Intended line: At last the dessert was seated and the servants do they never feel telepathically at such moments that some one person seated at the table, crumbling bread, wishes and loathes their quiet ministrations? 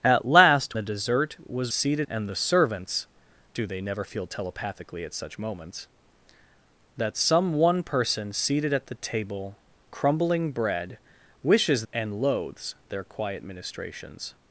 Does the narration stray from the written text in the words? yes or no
no